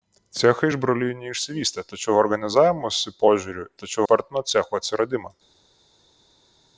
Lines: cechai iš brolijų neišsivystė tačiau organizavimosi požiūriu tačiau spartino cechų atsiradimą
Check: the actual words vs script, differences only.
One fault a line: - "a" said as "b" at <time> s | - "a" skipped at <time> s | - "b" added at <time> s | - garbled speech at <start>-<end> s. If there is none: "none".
none